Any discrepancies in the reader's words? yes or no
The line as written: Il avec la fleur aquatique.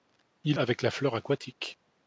no